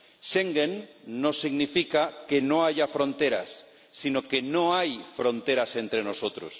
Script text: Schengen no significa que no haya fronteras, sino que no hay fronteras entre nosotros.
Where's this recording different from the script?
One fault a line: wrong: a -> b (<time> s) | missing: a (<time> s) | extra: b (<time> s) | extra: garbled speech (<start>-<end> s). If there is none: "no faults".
no faults